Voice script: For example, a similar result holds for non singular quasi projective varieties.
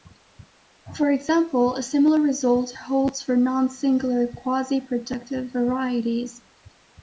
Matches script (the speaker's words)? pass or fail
pass